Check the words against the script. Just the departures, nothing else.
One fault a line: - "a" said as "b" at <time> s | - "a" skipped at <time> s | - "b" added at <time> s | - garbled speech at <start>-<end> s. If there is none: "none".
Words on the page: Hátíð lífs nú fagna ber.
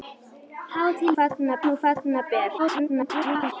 - "lífs" said as "fagna" at 1.1 s
- garbled speech at 2.6-3.5 s